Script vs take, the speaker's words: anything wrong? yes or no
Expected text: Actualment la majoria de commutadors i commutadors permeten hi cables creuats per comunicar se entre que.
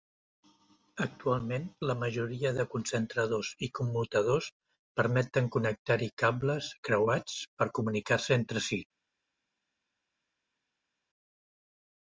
yes